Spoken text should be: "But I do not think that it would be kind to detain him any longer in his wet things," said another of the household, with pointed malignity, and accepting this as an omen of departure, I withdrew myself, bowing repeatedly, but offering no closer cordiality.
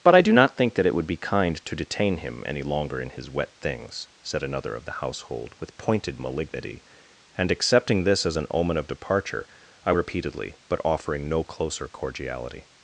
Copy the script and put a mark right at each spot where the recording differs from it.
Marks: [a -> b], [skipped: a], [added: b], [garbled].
"But I do not think that it would be kind to detain him any longer in his wet things," said another of the household, with pointed malignity, and accepting this as an omen of departure, I [skipped: withdrew myself, bowing] repeatedly, but offering no closer cordiality.